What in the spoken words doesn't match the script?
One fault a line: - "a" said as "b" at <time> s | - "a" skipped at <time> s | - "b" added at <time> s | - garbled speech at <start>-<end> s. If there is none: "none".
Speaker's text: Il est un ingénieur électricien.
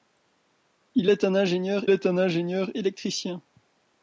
- "est un ingénieur" added at 1.9 s